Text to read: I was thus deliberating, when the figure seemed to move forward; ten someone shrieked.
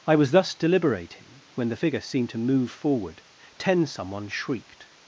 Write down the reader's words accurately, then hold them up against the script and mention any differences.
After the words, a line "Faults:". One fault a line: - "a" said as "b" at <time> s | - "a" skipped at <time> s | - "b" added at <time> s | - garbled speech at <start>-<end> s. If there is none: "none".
I was thus deliberating, when the figure seemed to move forward; ten someone shrieked.
Faults:
none